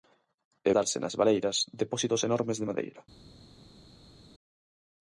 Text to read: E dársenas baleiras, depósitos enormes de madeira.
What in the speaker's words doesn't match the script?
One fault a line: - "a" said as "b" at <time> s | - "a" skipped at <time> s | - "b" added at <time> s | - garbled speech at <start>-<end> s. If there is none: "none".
none